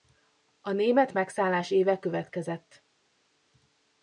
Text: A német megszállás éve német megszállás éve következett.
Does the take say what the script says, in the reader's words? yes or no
no